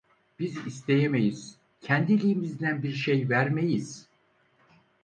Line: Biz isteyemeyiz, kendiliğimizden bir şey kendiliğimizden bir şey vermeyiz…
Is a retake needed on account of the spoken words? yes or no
yes